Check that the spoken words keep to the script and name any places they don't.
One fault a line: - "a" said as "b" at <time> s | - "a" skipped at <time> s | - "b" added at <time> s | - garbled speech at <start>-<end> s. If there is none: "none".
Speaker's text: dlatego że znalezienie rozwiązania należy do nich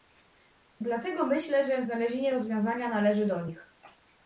- "myślę" added at 1.2 s